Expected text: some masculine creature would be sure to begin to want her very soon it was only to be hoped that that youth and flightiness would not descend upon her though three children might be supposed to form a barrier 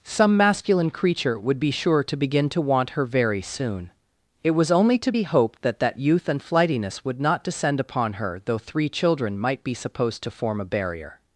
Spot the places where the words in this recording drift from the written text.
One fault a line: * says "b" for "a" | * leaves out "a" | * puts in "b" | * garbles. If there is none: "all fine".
all fine